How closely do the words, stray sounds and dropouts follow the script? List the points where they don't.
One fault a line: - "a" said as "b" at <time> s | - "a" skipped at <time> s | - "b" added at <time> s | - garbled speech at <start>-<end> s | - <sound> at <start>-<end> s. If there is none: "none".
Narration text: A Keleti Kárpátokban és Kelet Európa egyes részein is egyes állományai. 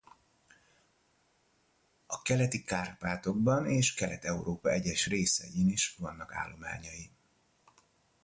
- "egyes" said as "vannak" at 6.0 s